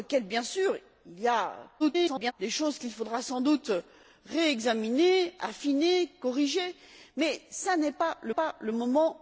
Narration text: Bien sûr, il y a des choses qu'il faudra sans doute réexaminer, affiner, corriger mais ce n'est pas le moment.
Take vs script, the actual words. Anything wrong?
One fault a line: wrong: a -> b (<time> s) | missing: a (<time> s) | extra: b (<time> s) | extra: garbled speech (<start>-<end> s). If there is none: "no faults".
extra: garbled speech (1.8-2.3 s)
extra: pas le (8.3 s)